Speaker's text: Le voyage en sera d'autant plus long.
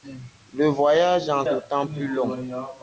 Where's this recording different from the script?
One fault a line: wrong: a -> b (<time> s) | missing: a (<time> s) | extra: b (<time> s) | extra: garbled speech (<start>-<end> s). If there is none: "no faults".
missing: sera (1.4 s)